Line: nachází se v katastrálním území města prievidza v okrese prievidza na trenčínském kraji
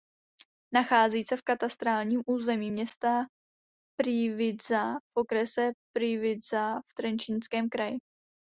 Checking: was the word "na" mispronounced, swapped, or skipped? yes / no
yes